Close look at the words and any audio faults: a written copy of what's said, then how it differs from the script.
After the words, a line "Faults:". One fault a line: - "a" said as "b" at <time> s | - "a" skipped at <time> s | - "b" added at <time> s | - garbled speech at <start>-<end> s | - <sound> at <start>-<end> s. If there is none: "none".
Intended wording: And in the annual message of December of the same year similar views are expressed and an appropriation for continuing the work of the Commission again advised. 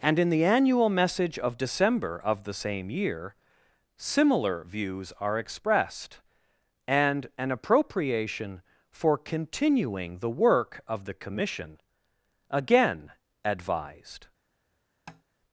And in the annual message of December of the same year similar views are expressed and an appropriation for continuing the work of the Commission again advised.
Faults:
- tap at 15.1-15.2 s